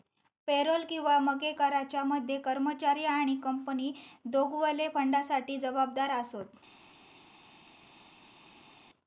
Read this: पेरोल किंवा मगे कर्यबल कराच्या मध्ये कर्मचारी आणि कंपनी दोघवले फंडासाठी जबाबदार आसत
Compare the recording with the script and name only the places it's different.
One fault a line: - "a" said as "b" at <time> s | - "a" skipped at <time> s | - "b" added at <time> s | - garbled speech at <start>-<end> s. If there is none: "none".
- "कर्यबल" skipped at 1.5 s